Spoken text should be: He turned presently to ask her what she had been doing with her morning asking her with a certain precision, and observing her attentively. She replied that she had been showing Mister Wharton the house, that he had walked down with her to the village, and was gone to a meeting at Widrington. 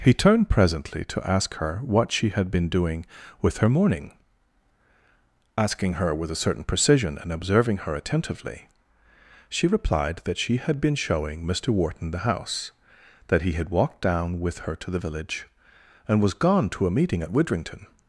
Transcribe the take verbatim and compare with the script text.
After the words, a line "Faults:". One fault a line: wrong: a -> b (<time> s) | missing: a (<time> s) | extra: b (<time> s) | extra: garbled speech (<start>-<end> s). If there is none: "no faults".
He turned presently to ask her what she had been doing with her morning asking her with a certain precision, and observing her attentively. She replied that she had been showing Mister Wharton the house, that he had walked down with her to the village, and was gone to a meeting at Widrington.
Faults:
no faults